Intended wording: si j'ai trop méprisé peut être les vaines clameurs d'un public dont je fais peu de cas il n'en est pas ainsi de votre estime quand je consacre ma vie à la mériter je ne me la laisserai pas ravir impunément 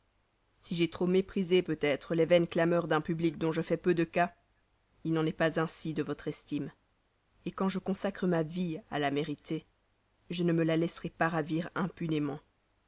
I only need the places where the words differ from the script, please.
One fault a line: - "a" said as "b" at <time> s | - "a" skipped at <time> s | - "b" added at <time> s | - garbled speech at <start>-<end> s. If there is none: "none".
none